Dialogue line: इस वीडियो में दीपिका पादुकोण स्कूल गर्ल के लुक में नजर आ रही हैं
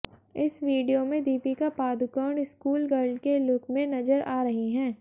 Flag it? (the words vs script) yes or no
no